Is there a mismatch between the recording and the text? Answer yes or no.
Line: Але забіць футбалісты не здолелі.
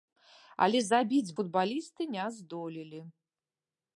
no